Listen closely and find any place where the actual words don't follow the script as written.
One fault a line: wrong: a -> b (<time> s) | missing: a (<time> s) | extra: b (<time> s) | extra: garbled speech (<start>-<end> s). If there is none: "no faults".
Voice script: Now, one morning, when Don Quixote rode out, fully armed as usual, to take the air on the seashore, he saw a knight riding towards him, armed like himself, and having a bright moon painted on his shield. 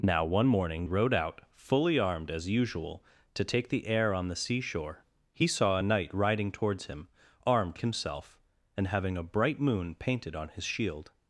missing: when Don Quixote (0.9 s)
missing: like (7.8 s)